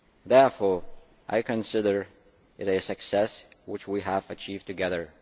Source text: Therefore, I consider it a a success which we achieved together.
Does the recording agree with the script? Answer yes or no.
no